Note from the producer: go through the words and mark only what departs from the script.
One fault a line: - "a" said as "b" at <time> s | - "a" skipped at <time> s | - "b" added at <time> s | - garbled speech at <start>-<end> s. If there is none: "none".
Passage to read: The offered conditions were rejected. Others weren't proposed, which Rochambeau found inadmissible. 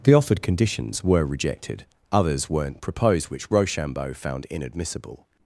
none